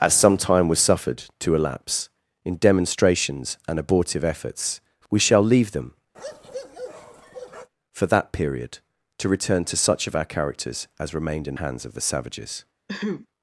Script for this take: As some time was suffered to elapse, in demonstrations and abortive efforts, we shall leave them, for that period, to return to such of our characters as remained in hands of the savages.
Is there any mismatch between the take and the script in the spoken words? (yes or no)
no